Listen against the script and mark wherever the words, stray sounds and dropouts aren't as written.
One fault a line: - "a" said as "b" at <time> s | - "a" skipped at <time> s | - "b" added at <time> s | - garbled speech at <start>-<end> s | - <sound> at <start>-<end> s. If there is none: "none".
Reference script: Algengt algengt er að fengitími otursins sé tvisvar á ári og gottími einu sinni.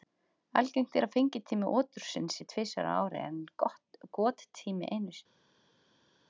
- "algengt" skipped at 0.9 s
- "og" said as "en" at 3.3 s